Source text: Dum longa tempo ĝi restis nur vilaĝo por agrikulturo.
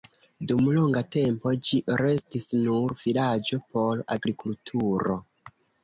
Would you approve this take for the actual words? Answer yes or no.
yes